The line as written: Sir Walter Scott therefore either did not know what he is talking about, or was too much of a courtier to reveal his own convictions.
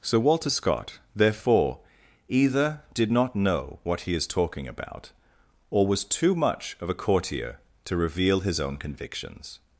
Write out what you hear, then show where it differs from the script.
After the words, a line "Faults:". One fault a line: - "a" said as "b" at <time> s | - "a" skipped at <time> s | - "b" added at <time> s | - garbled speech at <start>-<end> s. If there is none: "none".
Sir Walter Scott therefore either did not know what he is talking about, or was too much of a courtier to reveal his own convictions.
Faults:
none